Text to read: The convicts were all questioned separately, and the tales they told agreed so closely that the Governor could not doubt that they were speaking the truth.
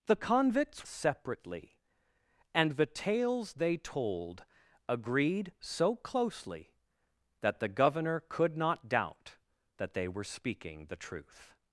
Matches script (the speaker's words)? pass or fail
fail